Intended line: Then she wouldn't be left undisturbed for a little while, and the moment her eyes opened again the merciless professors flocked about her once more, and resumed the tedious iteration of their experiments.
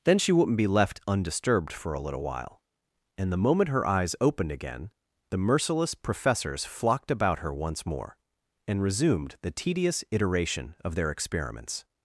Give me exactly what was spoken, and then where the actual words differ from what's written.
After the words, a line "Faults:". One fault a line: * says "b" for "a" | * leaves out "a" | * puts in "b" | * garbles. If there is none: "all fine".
Then she wouldn't be left undisturbed for a little while, and the moment her eyes opened again the merciless professors flocked about her once more, and resumed the tedious iteration of their experiments.
Faults:
all fine